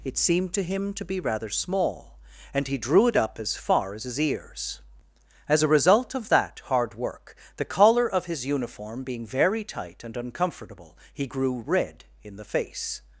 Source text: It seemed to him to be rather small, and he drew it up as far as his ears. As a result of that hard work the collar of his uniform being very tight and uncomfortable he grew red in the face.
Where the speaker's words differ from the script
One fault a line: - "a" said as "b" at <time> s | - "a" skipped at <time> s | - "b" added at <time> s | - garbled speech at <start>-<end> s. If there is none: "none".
none